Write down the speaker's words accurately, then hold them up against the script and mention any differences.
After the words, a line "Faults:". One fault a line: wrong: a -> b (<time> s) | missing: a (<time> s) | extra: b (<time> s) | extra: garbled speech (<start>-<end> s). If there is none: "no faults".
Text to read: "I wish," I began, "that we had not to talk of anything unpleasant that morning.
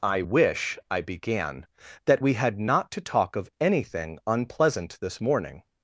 "I wish," I began, "that we had not to talk of anything unpleasant this morning.
Faults:
wrong: that -> this (5.0 s)